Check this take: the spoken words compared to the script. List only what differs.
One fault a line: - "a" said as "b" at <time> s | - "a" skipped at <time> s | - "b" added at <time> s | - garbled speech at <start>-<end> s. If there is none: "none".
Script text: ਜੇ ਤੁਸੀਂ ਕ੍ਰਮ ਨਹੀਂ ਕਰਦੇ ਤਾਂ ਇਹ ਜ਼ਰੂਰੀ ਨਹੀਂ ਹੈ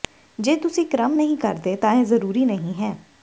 none